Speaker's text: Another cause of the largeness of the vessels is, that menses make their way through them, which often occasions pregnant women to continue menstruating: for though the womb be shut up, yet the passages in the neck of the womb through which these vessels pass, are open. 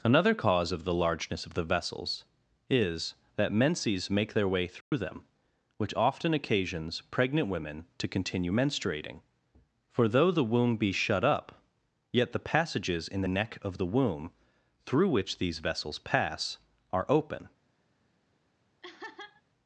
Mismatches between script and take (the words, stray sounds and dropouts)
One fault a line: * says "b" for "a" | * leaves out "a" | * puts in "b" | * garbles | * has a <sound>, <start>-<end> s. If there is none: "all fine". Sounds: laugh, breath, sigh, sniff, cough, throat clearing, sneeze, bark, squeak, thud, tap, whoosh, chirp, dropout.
* has a dropout, 4.8-4.9 s
* has a laugh, 18.8-19.4 s